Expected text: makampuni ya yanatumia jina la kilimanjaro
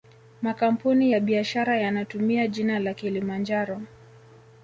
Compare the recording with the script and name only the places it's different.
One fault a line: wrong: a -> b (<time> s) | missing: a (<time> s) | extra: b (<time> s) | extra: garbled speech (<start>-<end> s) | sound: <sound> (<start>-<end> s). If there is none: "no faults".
extra: biashara (1.2 s)